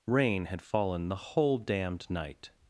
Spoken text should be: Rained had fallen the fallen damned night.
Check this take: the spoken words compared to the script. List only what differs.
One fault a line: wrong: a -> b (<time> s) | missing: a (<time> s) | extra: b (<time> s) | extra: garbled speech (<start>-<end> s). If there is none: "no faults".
wrong: Rained -> Rain (0.1 s)
wrong: fallen -> whole (1.2 s)